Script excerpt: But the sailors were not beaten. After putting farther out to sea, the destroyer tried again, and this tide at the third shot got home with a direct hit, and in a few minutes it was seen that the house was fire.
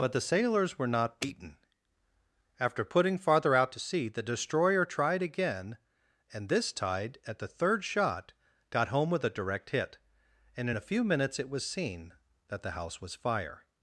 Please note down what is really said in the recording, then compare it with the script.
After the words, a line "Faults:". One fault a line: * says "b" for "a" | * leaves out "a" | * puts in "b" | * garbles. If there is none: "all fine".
But the sailors were not beaten. After putting farther out to sea, the destroyer tried again, and this tide at the third shot got home with a direct hit, and in a few minutes it was seen that the house was fire.
Faults:
all fine